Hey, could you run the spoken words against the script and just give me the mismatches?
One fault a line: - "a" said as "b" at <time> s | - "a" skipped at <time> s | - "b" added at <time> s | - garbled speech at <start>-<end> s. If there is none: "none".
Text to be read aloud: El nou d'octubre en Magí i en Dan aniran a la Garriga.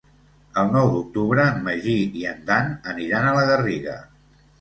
none